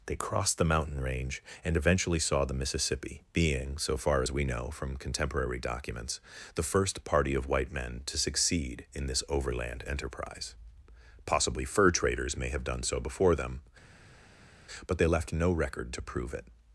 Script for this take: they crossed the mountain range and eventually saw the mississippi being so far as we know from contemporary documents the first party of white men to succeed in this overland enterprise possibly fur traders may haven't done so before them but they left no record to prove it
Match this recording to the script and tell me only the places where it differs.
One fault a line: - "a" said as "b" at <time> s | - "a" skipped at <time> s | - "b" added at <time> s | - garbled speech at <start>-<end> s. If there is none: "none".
- "haven't" said as "have" at 12.5 s